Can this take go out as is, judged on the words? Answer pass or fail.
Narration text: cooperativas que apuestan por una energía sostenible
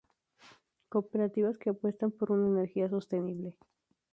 pass